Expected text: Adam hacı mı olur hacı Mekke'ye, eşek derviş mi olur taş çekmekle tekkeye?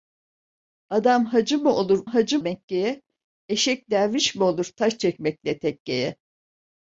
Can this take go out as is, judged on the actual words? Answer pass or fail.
pass